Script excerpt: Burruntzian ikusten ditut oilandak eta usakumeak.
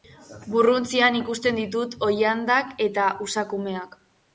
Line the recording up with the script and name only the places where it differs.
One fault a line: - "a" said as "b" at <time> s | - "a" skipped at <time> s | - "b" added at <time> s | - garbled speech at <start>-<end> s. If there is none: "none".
none